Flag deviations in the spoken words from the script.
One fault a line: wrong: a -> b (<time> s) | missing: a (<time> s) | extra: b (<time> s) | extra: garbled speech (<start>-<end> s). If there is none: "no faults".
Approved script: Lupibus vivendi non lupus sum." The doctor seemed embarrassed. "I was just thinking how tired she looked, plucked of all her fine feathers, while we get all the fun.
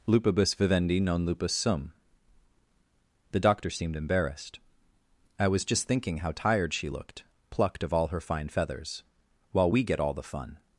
no faults